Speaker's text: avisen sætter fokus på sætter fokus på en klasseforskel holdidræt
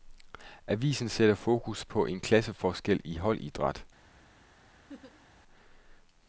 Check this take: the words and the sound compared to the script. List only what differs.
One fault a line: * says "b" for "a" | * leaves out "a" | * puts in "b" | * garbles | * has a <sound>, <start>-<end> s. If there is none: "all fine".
* leaves out "sætter fokus på"
* puts in "i"
* has a laugh, 4.9-5.3 s